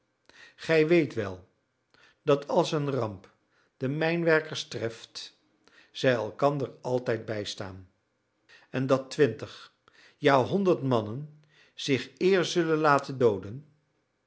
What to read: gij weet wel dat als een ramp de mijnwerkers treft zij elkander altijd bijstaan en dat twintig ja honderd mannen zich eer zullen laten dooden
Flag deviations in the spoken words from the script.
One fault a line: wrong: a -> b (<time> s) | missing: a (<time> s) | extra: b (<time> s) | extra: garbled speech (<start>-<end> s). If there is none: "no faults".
no faults